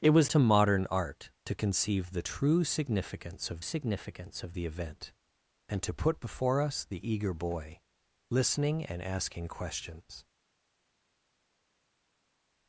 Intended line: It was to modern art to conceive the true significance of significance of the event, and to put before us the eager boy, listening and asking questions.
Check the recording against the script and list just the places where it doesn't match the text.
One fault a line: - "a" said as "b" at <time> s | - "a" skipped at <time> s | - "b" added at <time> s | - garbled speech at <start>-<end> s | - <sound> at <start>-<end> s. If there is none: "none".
none